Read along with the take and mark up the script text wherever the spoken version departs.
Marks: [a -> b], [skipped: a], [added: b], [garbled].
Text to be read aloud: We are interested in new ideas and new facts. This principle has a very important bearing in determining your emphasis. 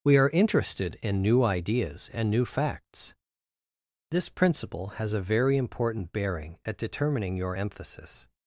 We are interested in new ideas and new facts. This principle has a very important bearing [in -> at] determining your emphasis.